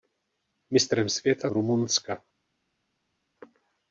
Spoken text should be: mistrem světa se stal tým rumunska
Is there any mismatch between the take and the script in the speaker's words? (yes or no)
yes